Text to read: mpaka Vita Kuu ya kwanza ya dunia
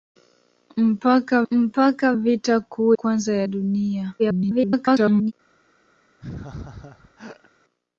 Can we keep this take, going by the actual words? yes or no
no